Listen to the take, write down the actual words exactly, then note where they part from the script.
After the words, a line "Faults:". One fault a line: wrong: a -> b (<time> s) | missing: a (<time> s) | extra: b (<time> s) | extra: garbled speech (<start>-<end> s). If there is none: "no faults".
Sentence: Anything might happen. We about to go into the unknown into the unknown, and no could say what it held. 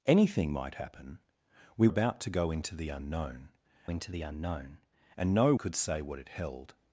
Anything might happen. We about to go into the unknown into the unknown, and no could say what it held.
Faults:
no faults